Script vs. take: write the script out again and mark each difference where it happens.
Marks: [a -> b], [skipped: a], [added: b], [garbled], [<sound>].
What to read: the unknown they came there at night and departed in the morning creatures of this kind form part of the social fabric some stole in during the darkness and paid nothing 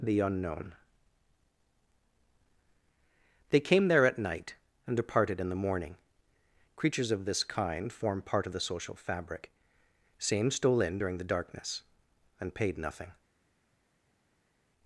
the unknown they came there at night and departed in the morning creatures of this kind form part of the social fabric [some -> same] stole in during the darkness and paid nothing